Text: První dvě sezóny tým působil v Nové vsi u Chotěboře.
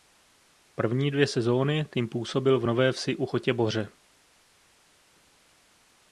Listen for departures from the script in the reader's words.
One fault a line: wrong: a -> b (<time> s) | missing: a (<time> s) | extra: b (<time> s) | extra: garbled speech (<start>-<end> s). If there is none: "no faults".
no faults